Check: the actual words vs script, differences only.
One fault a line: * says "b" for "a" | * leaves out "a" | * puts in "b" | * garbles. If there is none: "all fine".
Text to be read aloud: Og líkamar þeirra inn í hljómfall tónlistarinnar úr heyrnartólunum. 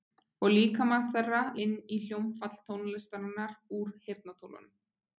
all fine